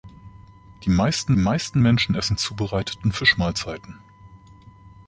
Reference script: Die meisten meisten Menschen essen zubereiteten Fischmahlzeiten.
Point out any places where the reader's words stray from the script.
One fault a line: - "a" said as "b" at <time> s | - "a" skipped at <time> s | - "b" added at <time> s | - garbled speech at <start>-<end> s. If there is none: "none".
none